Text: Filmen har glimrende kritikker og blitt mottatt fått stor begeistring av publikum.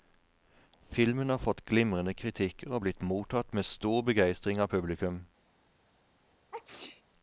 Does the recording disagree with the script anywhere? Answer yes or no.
yes